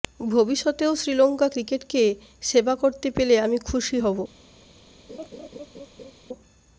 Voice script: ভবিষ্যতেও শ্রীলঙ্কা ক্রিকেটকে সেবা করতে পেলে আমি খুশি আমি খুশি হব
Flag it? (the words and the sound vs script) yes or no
yes